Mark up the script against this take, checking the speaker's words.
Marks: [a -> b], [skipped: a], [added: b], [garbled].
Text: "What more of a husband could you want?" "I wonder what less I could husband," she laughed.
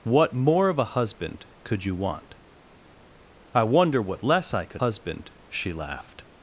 "What more of a husband could you want?" "I wonder what less I could husband," she laughed.